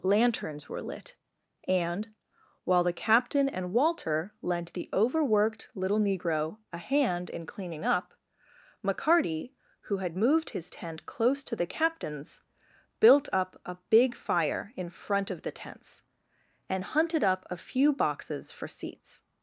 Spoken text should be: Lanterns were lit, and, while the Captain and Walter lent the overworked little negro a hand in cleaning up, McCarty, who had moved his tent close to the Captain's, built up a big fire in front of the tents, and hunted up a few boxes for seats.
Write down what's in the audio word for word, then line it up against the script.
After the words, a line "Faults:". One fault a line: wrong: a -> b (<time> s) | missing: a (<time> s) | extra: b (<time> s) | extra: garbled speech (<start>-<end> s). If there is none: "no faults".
Lanterns were lit, and, while the Captain and Walter lent the overworked little negro a hand in cleaning up, McCarty, who had moved his tent close to the Captain's, built up a big fire in front of the tents, and hunted up a few boxes for seats.
Faults:
no faults